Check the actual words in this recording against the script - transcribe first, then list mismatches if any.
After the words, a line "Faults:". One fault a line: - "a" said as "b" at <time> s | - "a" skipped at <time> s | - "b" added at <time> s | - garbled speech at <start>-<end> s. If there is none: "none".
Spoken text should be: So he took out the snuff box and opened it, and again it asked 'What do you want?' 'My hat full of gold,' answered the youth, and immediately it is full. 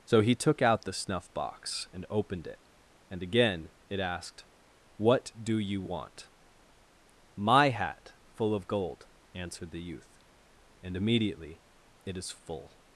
So he took out the snuff box and opened it, and again it asked 'What do you want?' 'My hat full of gold,' answered the youth, and immediately it is full.
Faults:
none